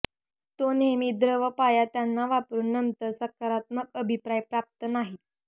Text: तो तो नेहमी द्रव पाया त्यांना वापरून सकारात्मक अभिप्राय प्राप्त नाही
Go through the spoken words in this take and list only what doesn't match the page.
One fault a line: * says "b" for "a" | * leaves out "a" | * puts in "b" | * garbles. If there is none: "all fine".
* leaves out "तो"
* puts in "नंतर"